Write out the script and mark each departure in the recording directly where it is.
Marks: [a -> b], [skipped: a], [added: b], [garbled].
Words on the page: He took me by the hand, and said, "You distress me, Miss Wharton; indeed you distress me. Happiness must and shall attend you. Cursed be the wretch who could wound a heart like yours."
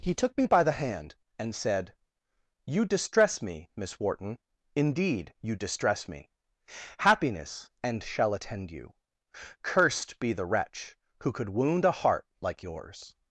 He took me by the hand, and said, "You distress me, Miss Wharton; indeed you distress me. Happiness [skipped: must] and shall attend you. Cursed be the wretch who could wound a heart like yours."